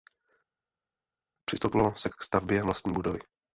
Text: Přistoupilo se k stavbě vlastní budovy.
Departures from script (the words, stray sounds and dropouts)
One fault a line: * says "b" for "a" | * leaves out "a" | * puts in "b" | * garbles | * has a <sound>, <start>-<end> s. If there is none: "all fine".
all fine